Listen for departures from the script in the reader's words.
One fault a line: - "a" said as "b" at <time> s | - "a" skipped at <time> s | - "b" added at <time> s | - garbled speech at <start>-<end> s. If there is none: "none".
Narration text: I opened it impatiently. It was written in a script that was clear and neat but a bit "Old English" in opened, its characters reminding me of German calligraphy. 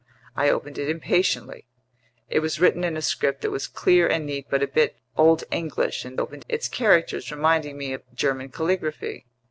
none